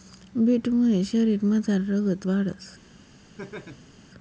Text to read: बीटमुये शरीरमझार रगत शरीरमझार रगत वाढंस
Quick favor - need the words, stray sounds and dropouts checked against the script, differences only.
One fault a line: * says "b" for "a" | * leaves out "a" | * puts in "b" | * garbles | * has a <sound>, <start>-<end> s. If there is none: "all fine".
* leaves out "शरीरमझार रगत"
* has a laugh, 3.4-3.9 s